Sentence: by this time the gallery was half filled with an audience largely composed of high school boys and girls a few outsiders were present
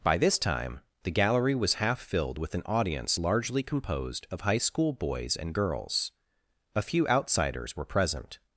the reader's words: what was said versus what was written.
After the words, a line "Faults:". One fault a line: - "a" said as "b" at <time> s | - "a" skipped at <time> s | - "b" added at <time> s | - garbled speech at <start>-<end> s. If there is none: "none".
by this time the gallery was half filled with an audience largely composed of high school boys and girls a few outsiders were present
Faults:
none